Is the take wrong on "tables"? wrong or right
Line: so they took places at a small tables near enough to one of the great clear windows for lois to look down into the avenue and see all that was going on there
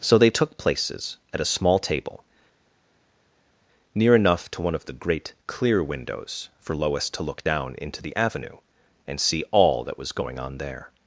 wrong